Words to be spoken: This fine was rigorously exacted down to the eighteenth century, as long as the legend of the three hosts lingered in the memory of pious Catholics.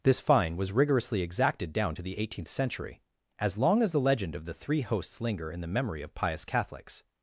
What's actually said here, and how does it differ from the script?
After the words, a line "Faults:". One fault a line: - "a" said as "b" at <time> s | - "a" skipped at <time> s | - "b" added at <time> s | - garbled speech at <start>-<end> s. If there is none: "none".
This fine was rigorously exacted down to the eighteenth century, as long as the legend of the three hosts linger in the memory of pious Catholics.
Faults:
- "lingered" said as "linger" at 5.2 s